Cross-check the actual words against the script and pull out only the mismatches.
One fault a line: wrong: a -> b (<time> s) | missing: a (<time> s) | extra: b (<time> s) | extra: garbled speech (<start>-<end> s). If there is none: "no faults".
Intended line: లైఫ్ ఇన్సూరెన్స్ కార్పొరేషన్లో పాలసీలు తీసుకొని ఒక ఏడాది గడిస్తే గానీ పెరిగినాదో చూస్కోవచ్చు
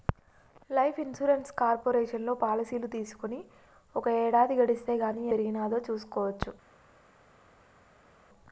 no faults